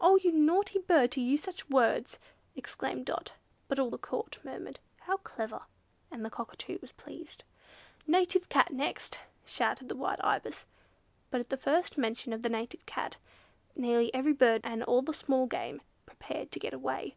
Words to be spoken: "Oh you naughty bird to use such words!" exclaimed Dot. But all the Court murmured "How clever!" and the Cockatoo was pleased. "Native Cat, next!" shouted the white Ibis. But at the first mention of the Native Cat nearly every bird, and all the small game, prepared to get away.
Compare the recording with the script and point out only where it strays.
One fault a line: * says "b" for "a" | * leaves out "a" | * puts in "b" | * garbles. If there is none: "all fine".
all fine